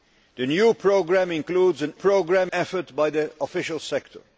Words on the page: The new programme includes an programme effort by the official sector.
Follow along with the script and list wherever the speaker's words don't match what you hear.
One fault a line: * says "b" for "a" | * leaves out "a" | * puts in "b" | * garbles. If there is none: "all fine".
all fine